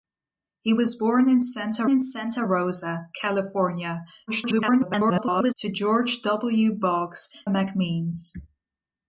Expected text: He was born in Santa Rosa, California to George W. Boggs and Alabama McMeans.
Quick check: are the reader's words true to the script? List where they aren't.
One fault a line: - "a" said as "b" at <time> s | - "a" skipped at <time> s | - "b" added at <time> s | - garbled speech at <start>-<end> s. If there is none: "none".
- "in Santa" added at 1.9 s
- garbled speech at 4.3-5.5 s
- "and Alabama" skipped at 7.3 s